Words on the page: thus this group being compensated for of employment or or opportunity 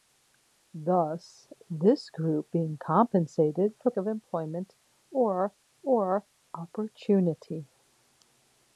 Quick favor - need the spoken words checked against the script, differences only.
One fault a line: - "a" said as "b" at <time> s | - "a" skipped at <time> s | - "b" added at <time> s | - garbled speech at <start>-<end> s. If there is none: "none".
none